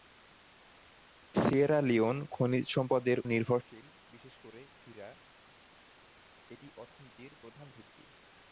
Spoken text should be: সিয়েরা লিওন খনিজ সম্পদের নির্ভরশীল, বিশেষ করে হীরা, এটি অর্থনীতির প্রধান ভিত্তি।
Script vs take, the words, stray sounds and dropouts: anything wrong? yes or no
no